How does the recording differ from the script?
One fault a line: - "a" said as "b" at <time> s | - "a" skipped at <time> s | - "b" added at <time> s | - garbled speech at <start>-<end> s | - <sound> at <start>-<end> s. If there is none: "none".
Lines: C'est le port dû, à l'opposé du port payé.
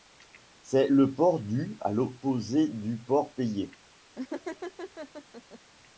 - laugh at 4.2-5.6 s